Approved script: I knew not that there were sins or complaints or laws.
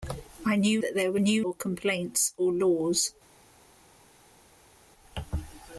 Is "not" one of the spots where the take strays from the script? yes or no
yes